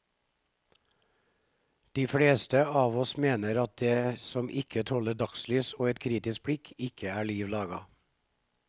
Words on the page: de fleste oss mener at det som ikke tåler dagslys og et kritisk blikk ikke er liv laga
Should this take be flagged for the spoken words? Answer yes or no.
yes